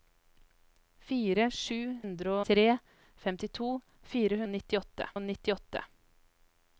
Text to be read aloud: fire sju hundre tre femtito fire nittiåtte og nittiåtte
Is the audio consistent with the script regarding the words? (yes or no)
yes